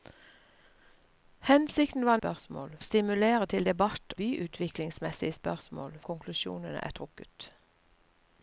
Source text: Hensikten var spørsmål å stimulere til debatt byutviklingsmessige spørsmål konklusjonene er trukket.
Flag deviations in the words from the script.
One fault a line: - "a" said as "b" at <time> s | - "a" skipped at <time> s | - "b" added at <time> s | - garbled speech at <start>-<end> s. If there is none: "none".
none